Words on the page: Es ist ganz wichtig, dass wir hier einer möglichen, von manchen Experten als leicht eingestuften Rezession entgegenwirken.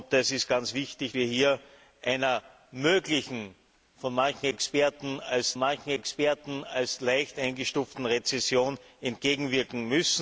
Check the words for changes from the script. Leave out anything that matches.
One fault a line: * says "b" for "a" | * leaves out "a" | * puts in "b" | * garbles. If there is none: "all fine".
* leaves out "dass"
* puts in "manchen Experten als"